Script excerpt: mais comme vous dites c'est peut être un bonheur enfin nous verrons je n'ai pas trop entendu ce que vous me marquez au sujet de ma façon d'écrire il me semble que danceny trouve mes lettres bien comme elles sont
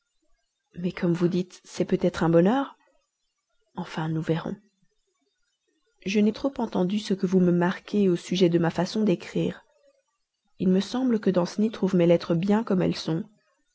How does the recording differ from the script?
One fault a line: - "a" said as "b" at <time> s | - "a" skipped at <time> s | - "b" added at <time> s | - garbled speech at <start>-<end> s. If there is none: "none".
- "pas" skipped at 6.3 s